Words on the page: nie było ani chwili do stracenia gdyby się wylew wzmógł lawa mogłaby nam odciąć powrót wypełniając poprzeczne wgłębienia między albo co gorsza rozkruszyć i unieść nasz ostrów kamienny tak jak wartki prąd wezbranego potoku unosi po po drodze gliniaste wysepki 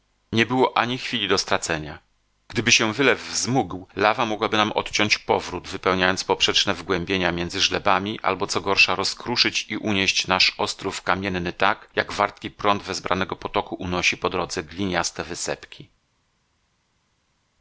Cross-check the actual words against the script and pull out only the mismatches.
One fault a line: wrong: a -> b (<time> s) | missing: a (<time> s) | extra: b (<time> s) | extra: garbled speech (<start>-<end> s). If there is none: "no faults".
extra: żlebami (7.6 s)
missing: po (14.3 s)